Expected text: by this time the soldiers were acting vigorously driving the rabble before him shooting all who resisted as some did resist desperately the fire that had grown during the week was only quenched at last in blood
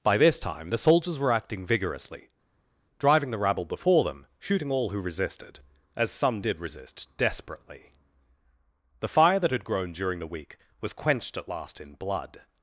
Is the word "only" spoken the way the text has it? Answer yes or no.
no